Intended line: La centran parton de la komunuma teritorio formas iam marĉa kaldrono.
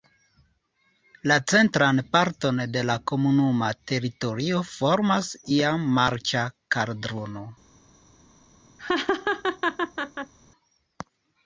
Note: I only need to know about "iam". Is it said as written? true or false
true